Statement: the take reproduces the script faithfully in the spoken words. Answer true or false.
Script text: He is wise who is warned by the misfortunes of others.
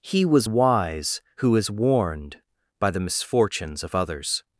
false